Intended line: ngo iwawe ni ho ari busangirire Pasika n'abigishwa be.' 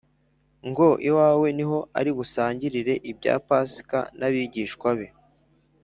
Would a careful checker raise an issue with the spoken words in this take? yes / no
yes